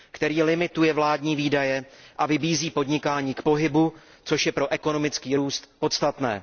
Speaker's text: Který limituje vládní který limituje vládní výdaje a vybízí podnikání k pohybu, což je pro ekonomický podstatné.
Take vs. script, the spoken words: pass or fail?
fail